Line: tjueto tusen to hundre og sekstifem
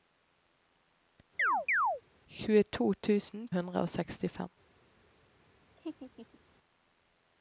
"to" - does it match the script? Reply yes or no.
no